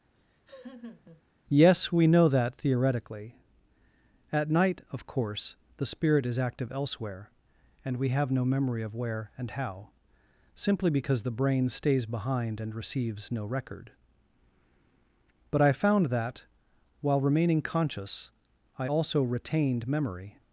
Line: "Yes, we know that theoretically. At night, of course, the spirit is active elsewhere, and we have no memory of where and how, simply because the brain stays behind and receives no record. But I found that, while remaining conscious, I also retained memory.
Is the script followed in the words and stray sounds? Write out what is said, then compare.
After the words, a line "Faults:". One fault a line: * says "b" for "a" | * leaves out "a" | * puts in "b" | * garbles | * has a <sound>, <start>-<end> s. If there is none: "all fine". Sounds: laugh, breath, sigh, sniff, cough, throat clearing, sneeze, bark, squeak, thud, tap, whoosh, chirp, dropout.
"Yes, we know that theoretically. At night, of course, the spirit is active elsewhere, and we have no memory of where and how, simply because the brain stays behind and receives no record. But I found that, while remaining conscious, I also retained memory.
Faults:
* has a laugh, 0.1-1.2 s